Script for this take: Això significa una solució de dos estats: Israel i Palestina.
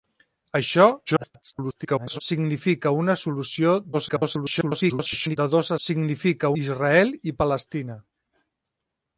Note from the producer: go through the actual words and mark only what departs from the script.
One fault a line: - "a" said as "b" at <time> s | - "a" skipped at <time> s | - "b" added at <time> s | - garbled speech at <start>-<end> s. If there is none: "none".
- garbled speech at 1.1-2.2 s
- garbled speech at 3.9-5.4 s
- "estats" said as "significa" at 5.9 s